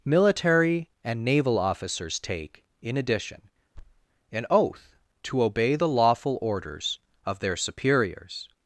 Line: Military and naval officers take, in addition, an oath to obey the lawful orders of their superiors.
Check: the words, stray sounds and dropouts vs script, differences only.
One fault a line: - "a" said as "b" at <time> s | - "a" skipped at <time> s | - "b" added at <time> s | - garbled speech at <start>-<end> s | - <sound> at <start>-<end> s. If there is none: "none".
- thud at 3.7-4.1 s